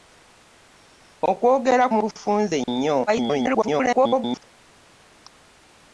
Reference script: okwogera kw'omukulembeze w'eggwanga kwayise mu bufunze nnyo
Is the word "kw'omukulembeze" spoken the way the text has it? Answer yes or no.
no